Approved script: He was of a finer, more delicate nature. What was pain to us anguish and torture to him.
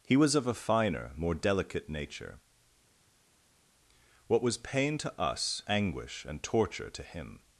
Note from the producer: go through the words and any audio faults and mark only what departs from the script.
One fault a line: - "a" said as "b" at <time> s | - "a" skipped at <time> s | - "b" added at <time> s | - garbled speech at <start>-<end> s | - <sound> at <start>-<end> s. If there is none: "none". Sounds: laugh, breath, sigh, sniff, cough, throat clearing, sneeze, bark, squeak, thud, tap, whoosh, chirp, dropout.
none